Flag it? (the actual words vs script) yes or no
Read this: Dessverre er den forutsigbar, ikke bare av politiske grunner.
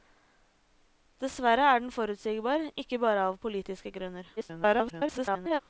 yes